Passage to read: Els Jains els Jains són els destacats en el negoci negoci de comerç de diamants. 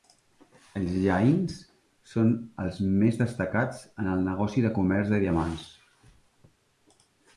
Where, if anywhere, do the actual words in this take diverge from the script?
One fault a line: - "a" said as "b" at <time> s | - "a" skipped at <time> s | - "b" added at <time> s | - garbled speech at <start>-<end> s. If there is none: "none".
- "els Jains" skipped at 1.6 s
- "més" added at 3.0 s
- "negoci" skipped at 4.7 s